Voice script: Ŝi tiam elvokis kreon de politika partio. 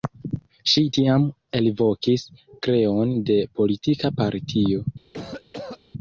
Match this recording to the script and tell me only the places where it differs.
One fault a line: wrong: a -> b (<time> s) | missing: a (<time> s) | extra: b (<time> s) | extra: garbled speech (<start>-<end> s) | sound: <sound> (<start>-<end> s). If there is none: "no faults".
sound: cough (5.1-5.8 s)